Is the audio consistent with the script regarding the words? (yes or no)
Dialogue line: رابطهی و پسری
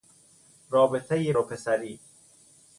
yes